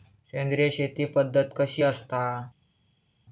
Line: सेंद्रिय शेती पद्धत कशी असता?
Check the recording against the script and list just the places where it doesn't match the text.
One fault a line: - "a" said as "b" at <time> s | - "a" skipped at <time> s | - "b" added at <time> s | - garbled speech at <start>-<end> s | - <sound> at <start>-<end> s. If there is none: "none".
none